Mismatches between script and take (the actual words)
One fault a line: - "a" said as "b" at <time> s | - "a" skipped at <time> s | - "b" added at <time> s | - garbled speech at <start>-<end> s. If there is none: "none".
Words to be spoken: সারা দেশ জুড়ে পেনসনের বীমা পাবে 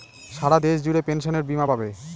none